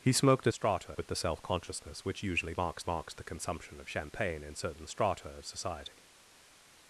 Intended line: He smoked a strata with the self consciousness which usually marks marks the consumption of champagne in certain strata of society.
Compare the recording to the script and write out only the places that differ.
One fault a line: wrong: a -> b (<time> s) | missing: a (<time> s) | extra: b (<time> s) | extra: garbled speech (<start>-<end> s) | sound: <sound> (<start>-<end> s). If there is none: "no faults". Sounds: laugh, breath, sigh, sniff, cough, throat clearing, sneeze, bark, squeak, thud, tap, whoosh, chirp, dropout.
no faults